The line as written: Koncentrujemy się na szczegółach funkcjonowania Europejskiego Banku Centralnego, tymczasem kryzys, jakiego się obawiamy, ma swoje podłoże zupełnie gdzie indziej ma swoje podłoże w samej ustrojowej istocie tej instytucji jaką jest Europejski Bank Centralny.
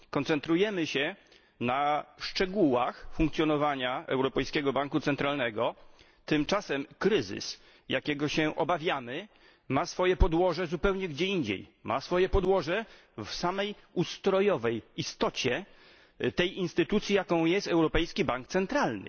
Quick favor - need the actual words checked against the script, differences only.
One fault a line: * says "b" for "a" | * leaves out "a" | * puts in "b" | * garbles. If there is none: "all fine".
all fine